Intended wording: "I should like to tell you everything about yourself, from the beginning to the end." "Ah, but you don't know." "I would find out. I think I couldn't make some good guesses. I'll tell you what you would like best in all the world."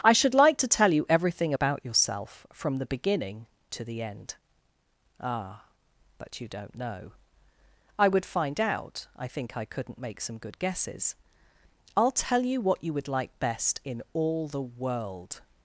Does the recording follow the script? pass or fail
pass